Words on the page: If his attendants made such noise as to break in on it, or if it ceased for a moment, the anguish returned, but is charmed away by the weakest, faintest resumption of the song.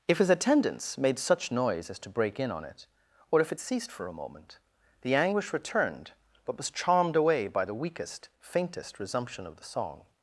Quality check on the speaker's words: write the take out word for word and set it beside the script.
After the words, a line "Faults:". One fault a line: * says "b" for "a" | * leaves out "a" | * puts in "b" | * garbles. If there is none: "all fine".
If his attendants made such noise as to break in on it, or if it ceased for a moment, the anguish returned, but was charmed away by the weakest, faintest resumption of the song.
Faults:
* says "was" for "is"